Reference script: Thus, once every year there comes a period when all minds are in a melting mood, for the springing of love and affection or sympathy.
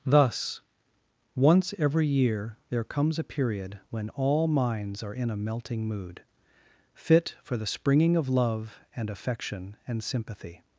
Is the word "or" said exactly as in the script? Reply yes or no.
no